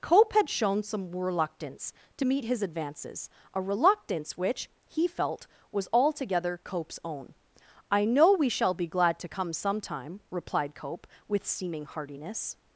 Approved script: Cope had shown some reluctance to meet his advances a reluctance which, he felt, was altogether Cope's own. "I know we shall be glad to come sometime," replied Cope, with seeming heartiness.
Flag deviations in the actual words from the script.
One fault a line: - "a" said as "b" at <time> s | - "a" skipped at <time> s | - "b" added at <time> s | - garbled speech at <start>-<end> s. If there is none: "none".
none